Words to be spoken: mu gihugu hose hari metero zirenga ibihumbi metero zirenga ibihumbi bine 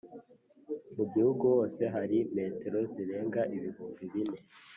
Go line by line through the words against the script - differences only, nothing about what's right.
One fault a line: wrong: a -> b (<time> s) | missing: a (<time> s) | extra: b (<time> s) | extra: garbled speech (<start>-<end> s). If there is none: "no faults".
missing: metero zirenga ibihumbi (4.0 s)